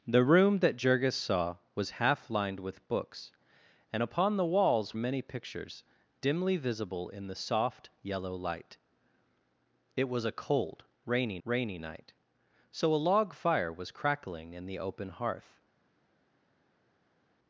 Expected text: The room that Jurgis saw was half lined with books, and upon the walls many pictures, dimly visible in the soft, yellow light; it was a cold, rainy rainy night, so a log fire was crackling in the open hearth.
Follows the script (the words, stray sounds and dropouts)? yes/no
yes